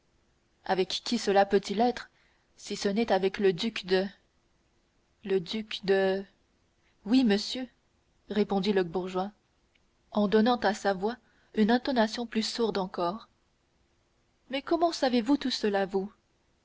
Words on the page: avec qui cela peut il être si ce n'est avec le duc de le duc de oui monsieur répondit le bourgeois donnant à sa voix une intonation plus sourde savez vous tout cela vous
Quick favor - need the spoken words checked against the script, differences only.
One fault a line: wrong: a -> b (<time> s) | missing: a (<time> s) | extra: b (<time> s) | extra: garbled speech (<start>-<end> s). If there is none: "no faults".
extra: en (10.1 s)
extra: encore mais comment (12.8 s)